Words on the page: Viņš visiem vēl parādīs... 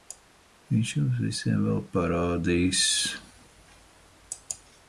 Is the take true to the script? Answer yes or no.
no